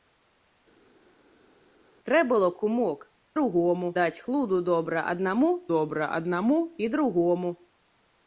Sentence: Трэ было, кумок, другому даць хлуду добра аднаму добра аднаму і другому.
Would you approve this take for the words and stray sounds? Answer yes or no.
yes